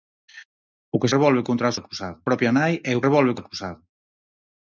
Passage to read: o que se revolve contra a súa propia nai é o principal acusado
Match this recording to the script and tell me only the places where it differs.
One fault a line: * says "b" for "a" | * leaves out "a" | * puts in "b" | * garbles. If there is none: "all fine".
* leaves out "se"
* says "acusado" for "súa"
* says "revolve" for "principal"